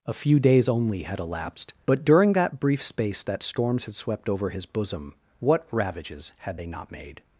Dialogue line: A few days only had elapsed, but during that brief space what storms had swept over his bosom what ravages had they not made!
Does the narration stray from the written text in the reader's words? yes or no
yes